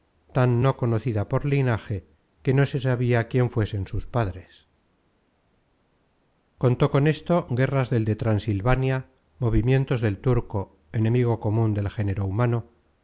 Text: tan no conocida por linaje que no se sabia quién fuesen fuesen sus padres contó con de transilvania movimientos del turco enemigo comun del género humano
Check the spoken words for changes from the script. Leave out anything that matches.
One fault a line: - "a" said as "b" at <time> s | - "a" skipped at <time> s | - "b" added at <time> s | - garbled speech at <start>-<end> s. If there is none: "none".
- "fuesen" skipped at 3.8 s
- "esto guerras del" added at 7.1 s